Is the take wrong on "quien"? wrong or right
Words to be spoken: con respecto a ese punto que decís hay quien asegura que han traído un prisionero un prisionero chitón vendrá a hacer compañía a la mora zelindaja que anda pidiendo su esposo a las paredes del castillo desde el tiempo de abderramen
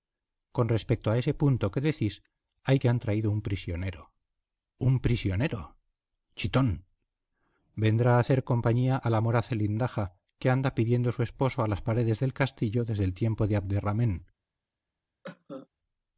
wrong